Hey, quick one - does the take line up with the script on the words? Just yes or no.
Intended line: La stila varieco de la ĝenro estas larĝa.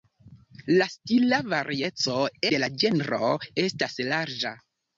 yes